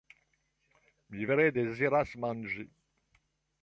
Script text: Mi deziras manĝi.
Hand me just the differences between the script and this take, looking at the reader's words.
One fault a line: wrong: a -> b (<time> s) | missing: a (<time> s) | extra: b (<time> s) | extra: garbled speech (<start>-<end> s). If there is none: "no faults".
extra: vere (1.3 s)